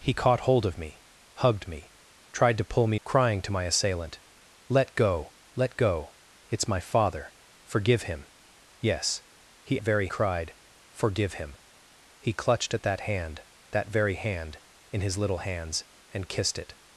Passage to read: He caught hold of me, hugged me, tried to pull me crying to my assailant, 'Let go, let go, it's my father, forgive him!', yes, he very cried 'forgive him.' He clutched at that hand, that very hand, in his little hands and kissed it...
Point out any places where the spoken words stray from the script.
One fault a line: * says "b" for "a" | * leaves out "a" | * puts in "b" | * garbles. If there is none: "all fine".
all fine